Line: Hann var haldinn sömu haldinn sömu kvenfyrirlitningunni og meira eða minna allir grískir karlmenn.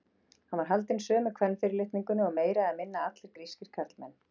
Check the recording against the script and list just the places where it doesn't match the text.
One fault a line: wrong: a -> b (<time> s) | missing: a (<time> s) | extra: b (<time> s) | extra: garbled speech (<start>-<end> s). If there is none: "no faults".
missing: haldinn sömu (1.3 s)